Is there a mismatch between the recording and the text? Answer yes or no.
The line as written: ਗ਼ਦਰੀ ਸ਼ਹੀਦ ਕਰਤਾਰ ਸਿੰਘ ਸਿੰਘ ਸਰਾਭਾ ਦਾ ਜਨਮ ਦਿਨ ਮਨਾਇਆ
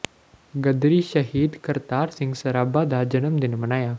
yes